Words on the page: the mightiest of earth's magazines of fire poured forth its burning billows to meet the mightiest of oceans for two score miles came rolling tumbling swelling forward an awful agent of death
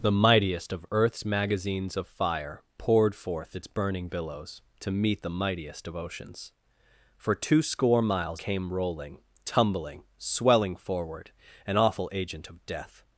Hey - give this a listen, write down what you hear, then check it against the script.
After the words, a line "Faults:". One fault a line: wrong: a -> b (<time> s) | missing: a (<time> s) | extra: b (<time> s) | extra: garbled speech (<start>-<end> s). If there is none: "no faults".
the mightiest of earth's magazines of fire poured forth its burning billows to meet the mightiest of oceans for two score miles came rolling tumbling swelling forward an awful agent of death
Faults:
no faults